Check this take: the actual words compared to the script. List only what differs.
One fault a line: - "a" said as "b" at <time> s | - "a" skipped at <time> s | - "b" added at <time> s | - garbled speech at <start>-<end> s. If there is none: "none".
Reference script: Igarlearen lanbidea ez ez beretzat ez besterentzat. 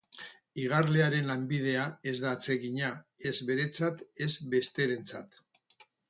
- "da atsegina" added at 2.2 s